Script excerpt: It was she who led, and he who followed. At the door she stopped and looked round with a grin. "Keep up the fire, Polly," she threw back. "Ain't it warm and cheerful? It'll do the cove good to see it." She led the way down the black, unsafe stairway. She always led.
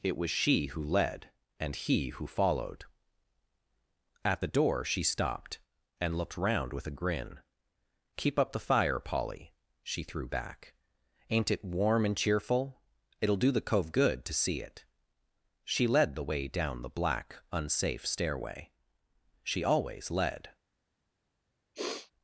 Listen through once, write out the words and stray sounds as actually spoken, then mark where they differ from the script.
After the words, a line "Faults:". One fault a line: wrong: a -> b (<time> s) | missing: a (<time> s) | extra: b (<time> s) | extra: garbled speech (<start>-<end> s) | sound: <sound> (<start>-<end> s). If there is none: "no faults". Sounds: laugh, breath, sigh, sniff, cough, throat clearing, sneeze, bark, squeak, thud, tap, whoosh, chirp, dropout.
It was she who led, and he who followed. At the door she stopped and looked round with a grin. "Keep up the fire, Polly," she threw back. "Ain't it warm and cheerful? It'll do the cove good to see it." She led the way down the black, unsafe stairway. She always led.
Faults:
sound: sniff (21.7-22.1 s)